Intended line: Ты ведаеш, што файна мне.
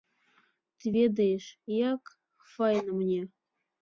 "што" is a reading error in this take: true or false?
true